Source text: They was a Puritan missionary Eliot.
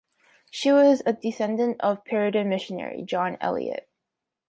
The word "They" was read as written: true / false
false